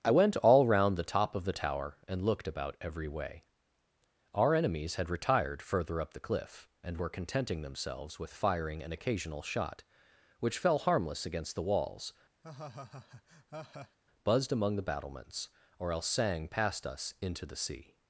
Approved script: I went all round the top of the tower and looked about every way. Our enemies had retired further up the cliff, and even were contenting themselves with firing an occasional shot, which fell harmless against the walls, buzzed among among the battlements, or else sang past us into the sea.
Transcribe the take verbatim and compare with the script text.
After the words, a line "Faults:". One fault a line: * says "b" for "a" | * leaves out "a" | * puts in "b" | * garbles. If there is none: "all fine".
I went all round the top of the tower and looked about every way. Our enemies had retired further up the cliff, and were contenting themselves with firing an occasional shot, which fell harmless against the walls, buzzed among the battlements, or else sang past us into the sea.
Faults:
* leaves out "even"
* leaves out "among"